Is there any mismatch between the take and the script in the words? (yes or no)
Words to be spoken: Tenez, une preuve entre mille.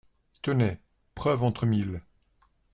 yes